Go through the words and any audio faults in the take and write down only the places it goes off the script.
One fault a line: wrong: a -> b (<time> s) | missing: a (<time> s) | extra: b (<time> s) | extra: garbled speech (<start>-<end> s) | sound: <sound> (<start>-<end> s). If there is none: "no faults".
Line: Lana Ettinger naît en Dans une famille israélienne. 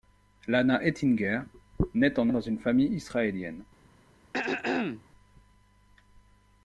sound: throat clearing (4.3-5.0 s)